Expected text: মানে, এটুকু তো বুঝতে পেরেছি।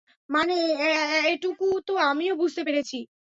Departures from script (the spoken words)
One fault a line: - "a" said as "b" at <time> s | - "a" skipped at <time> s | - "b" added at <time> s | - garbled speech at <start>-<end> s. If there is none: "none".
- "আমিও" added at 2.1 s